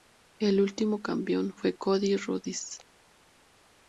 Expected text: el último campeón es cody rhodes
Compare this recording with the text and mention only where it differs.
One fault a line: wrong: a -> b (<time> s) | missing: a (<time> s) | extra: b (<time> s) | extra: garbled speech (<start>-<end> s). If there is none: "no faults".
wrong: es -> fue (1.6 s)